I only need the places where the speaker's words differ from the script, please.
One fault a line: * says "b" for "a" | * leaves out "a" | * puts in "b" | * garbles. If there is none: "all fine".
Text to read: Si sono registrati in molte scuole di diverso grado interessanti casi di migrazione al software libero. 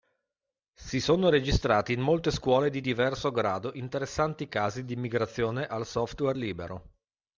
all fine